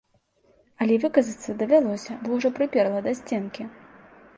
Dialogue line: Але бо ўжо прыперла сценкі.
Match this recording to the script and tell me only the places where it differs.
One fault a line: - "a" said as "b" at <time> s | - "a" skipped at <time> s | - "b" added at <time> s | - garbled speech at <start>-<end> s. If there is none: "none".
- "выказацца давялося" added at 1.0 s
- "да" added at 3.1 s